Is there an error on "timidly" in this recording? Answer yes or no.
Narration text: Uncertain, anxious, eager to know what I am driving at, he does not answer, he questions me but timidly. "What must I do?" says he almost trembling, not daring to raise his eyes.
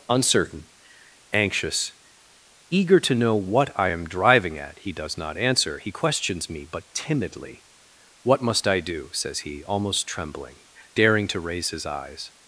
no